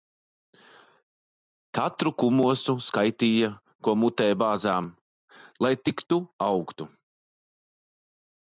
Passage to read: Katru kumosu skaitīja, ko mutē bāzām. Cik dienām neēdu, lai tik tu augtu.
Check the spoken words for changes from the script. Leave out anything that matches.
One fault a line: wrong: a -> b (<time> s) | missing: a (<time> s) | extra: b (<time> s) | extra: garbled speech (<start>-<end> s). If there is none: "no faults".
missing: Cik dienām neēdu (4.9 s)